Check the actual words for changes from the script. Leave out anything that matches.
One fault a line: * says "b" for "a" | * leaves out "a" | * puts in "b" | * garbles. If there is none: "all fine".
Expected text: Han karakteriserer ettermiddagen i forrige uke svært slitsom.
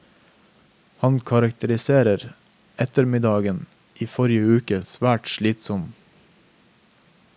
all fine